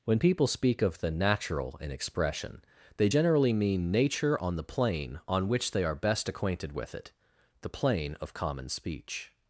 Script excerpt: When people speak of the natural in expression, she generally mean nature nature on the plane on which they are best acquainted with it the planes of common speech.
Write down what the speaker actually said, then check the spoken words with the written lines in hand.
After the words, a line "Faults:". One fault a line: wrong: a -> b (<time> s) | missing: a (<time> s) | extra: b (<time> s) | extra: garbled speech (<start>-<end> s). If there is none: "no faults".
When people speak of the natural in expression, they generally mean nature on the plane on which they are best acquainted with it the plane of common speech.
Faults:
wrong: she -> they (3.0 s)
missing: nature (4.4 s)
wrong: planes -> plane (7.7 s)